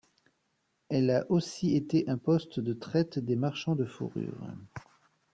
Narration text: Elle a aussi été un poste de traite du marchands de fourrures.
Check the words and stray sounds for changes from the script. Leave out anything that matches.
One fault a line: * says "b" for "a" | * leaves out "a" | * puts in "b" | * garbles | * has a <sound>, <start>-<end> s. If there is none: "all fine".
* says "des" for "du"